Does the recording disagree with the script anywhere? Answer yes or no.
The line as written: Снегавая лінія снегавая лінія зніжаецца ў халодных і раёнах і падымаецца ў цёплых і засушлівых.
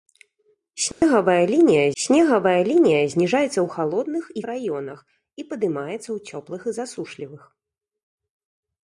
no